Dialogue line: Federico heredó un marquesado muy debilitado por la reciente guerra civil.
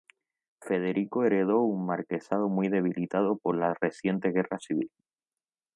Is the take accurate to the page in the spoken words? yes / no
yes